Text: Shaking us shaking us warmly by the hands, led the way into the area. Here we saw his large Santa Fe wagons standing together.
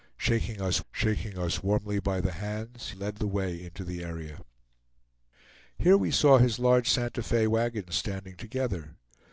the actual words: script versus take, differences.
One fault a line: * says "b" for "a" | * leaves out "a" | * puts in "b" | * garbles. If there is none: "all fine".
all fine